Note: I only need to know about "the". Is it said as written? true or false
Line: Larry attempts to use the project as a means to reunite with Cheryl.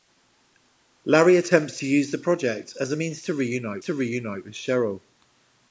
true